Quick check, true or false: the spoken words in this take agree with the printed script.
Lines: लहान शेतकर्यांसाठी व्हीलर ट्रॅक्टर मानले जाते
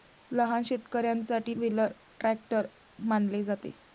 true